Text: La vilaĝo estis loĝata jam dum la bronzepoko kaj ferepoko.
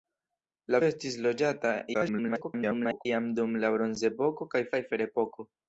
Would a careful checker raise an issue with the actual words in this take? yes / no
yes